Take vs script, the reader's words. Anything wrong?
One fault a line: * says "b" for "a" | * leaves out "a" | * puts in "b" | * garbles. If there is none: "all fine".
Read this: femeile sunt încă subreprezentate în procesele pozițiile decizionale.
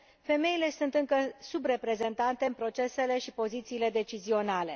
* puts in "și"